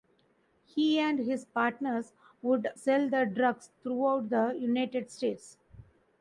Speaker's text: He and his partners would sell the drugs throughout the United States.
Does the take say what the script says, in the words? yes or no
yes